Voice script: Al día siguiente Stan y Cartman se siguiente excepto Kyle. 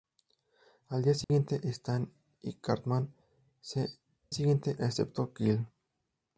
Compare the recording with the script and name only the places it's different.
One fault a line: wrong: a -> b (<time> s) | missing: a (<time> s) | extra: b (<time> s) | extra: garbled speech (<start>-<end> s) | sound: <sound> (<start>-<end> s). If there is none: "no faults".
sound: dropout (1.2-1.3 s)